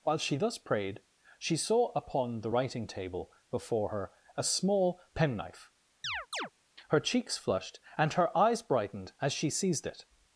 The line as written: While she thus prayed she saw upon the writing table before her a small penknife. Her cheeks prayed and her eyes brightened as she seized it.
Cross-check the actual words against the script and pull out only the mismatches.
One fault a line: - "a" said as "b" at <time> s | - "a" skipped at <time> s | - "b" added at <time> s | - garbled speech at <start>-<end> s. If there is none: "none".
- "prayed" said as "flushed" at 7.4 s